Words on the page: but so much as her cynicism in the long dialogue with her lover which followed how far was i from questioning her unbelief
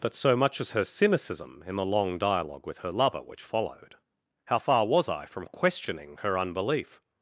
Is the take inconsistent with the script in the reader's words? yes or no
no